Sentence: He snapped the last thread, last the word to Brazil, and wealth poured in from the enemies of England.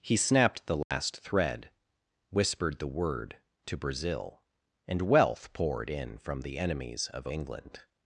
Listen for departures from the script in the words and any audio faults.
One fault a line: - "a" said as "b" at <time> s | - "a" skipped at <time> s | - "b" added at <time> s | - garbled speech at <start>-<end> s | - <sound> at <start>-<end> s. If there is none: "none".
- dropout at 0.8-0.9 s
- "last" said as "whispered" at 2.3 s